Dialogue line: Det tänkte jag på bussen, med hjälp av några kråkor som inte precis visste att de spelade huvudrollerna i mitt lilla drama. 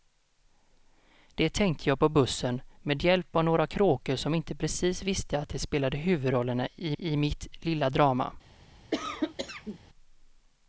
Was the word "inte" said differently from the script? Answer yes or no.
no